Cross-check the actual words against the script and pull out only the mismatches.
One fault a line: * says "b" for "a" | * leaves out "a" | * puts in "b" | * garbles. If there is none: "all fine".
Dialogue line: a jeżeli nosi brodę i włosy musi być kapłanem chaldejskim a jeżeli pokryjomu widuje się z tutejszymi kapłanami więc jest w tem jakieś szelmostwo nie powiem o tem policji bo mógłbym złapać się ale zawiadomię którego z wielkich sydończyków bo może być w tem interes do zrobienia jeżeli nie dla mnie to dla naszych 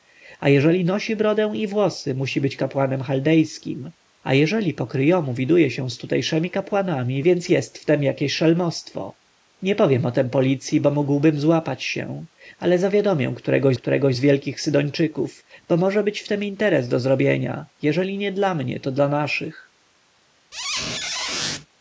* puts in "którego"